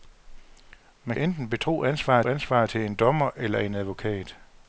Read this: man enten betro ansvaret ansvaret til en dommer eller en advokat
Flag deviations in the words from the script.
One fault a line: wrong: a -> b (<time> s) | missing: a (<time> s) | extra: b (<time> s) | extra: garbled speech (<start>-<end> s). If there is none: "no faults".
no faults